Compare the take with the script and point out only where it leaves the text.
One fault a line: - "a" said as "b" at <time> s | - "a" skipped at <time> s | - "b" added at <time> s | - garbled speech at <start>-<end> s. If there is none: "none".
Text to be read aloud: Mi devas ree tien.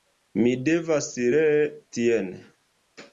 none